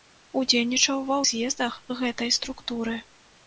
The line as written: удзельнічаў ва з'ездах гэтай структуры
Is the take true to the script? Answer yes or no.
yes